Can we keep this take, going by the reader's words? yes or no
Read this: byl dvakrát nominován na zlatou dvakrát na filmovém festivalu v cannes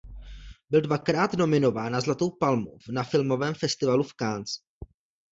no